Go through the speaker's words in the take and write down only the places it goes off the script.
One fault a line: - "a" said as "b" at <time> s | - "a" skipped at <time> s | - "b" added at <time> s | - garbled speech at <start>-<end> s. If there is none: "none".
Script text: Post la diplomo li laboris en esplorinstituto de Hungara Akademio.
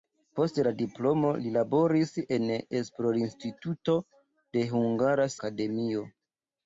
none